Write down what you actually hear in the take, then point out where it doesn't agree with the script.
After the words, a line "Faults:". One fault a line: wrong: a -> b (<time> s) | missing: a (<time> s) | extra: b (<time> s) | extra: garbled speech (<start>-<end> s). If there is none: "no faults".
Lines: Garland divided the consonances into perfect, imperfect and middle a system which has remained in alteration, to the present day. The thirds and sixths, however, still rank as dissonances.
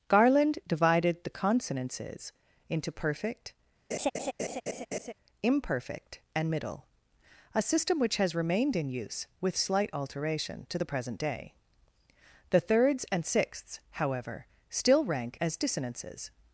Garland divided the consonances into perfect, imperfect and middle a system which has remained in use, with slight alteration, to the present day. The thirds and sixths, however, still rank as dissonances.
Faults:
extra: use with slight (8.9 s)